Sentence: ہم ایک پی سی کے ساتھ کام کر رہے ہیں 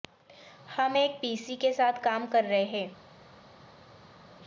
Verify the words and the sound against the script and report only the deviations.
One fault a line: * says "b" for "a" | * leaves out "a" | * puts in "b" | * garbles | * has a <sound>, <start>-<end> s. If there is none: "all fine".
all fine